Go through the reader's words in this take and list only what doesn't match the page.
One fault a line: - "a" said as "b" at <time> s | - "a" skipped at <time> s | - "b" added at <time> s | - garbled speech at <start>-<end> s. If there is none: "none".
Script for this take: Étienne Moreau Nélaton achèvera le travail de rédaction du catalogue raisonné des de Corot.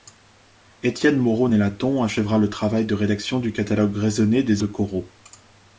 none